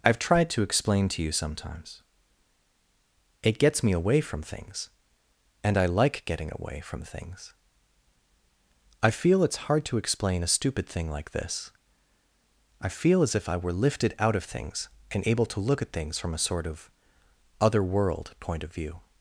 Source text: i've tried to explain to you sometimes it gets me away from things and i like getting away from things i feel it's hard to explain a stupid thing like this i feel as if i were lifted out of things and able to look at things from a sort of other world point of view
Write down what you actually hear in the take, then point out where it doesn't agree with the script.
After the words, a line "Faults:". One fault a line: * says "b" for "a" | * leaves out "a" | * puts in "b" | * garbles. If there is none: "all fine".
i've tried to explain to you sometimes it gets me away from things and i like getting away from things i feel it's hard to explain a stupid thing like this i feel as if i were lifted out of things and able to look at things from a sort of other world point of view
Faults:
all fine